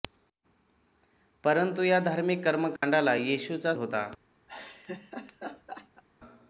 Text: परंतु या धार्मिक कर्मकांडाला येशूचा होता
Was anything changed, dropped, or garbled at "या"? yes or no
no